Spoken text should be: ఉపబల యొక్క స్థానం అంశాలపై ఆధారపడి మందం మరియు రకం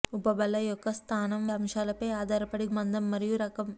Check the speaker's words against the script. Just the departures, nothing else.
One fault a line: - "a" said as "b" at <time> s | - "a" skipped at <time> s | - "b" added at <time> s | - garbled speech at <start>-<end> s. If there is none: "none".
none